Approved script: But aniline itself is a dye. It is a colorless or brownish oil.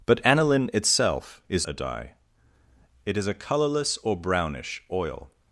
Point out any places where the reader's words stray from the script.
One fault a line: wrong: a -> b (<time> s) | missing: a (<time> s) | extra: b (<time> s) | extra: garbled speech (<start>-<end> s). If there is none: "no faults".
no faults